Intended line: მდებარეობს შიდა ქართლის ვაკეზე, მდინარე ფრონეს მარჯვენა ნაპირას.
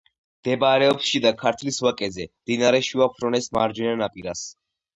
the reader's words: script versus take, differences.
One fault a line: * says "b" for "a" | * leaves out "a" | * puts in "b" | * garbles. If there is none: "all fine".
* puts in "შუა"